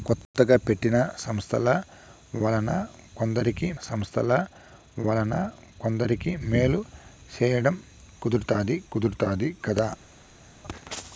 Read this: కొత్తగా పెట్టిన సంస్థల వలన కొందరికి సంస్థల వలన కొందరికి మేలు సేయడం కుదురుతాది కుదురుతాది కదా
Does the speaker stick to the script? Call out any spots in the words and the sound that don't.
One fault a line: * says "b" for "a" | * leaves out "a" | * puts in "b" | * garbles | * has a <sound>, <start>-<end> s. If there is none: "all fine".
all fine